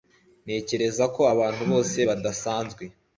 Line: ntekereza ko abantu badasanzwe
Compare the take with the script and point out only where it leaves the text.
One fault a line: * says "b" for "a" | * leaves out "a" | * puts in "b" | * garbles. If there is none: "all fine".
* puts in "bose"